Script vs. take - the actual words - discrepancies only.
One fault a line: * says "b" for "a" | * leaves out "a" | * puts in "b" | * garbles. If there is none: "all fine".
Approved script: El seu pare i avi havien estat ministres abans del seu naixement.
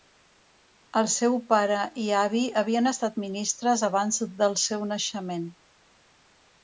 all fine